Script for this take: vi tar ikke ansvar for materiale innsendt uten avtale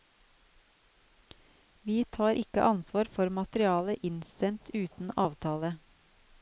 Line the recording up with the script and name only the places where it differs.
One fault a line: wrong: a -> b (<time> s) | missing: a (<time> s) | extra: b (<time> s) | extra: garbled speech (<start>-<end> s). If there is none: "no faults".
no faults